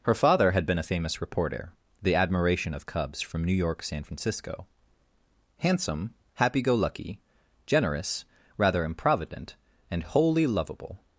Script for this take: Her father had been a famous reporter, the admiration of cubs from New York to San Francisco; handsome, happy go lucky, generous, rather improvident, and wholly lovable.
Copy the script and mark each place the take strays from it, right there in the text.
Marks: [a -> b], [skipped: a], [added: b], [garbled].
Her father had been a famous reporter, the admiration of cubs from New York [skipped: to] San Francisco; handsome, happy go lucky, generous, rather improvident, and wholly lovable.